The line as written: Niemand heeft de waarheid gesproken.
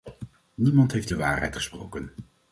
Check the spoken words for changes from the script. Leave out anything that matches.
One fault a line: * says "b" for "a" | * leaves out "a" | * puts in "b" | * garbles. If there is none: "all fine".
all fine